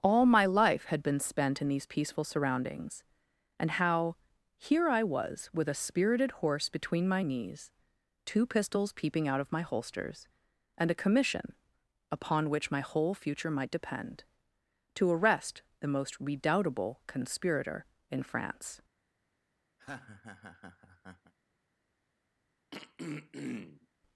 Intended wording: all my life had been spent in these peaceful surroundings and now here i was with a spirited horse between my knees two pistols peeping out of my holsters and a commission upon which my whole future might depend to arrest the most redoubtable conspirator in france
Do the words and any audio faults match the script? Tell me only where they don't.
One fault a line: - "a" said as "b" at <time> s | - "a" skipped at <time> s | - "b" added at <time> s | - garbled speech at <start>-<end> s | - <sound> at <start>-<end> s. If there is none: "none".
- "now" said as "how" at 3.7 s
- laugh at 19.8-21.3 s
- throat clearing at 22.7-23.9 s